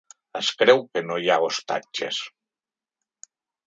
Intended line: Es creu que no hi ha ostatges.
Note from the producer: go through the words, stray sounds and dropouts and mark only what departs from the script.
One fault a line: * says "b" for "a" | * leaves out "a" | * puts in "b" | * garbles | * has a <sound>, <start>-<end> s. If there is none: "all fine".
all fine